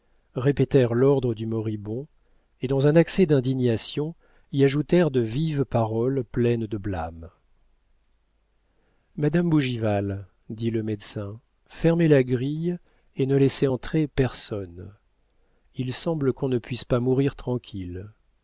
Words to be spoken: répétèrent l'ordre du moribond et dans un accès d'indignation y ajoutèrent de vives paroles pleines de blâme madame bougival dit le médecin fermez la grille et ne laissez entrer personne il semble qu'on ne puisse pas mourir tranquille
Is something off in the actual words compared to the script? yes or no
no